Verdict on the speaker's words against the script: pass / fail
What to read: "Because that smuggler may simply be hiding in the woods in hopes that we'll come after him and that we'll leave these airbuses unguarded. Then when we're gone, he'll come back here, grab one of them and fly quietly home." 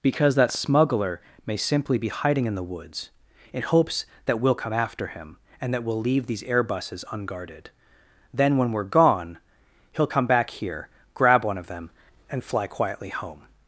pass